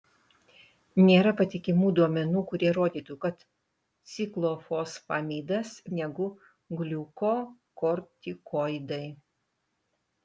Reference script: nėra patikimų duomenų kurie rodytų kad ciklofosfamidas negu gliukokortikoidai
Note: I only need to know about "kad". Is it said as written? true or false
true